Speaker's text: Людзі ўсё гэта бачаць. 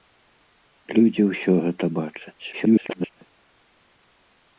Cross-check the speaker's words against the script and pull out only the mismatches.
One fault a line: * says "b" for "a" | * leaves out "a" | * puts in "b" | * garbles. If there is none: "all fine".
* garbles